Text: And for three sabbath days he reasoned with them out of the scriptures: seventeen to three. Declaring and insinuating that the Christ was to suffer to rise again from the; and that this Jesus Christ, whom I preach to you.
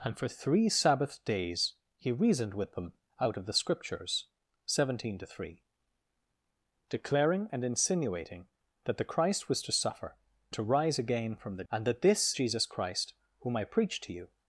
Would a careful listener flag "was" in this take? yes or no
no